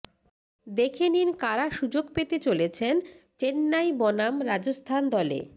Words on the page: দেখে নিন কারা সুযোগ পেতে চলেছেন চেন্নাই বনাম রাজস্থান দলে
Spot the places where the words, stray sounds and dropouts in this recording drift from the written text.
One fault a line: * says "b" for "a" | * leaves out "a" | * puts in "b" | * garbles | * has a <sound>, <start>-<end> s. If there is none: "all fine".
all fine